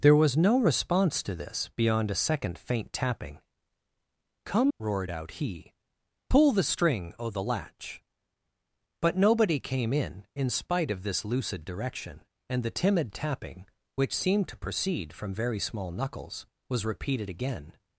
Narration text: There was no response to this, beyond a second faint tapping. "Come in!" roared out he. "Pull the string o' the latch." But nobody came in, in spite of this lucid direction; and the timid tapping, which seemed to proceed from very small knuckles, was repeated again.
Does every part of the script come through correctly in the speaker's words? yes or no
no